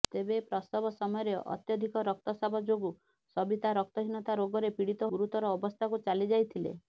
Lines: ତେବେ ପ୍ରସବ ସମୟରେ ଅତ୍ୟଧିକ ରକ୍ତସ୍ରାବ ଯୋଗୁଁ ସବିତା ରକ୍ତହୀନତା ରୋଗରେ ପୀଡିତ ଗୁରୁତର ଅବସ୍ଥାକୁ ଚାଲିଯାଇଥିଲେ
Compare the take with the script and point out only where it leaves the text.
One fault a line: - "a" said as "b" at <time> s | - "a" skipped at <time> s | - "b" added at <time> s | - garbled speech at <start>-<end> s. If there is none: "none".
none